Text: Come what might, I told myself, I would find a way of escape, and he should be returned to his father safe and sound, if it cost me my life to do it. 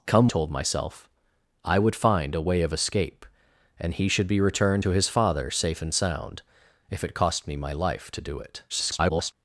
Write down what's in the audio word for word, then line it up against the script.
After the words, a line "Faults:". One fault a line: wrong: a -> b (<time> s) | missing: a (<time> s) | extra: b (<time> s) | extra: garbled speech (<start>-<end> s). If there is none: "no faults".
Come told myself, I would find a way of escape, and he should be returned to his father safe and sound, if it cost me my life to do it. [garbled]
Faults:
missing: what might I (0.3 s)
extra: garbled speech (8.7-9.3 s)